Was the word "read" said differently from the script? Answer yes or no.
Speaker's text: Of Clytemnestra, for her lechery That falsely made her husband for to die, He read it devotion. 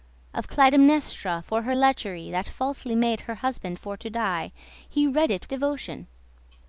no